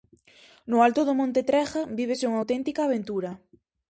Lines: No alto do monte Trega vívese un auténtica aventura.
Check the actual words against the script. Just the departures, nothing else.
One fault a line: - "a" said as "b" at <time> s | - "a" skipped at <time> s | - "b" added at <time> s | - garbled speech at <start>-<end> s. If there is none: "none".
- "un" said as "unha" at 2.3 s